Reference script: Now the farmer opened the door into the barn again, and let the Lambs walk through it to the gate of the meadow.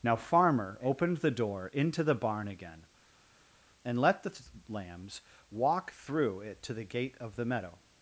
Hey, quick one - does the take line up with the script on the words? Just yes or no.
no